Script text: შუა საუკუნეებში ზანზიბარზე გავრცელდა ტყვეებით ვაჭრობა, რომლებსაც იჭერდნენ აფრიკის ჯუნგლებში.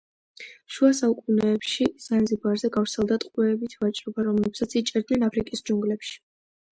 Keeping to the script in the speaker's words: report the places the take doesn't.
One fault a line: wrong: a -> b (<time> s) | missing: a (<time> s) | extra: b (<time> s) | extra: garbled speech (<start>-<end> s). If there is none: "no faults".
no faults